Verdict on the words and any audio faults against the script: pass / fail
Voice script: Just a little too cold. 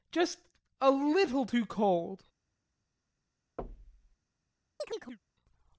fail